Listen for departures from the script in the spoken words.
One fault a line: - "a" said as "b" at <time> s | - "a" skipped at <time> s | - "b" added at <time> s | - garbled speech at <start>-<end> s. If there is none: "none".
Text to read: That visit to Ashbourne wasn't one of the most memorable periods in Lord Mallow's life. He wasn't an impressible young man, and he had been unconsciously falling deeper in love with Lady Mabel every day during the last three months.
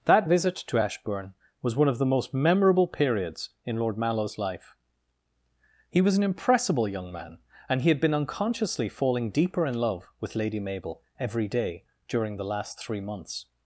- "wasn't" said as "was" at 1.6 s
- "wasn't" said as "was" at 6.0 s